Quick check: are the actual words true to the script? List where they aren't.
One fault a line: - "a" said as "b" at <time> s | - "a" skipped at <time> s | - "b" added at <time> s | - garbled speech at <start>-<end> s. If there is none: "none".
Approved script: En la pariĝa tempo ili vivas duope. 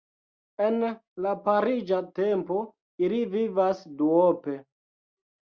none